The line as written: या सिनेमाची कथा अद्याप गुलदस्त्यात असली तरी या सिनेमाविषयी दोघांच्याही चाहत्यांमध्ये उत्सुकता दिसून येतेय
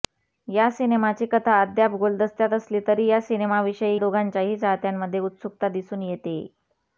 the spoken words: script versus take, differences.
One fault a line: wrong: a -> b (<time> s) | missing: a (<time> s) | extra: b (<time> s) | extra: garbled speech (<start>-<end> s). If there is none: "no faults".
no faults